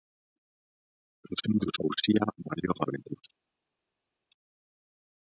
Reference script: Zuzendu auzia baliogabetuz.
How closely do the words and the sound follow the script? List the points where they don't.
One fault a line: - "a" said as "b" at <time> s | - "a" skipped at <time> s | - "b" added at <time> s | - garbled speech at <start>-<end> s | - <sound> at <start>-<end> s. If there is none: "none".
none